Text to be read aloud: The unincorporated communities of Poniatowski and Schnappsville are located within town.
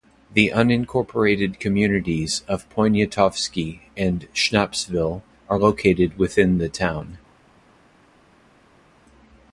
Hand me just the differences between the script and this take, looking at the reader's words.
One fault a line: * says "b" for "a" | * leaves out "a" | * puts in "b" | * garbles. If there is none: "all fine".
* puts in "the"